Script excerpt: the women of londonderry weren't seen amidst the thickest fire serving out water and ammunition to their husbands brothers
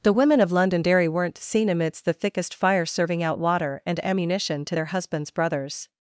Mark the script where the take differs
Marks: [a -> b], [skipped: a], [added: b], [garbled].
the women of londonderry weren't seen amidst the thickest fire serving out water and ammunition to their husbands brothers